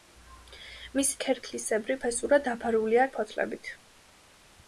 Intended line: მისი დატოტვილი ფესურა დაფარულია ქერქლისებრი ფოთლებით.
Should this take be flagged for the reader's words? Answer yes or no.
yes